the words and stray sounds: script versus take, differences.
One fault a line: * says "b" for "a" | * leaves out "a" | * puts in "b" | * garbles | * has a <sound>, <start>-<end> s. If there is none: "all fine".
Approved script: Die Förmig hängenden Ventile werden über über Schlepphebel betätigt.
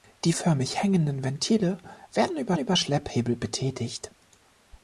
all fine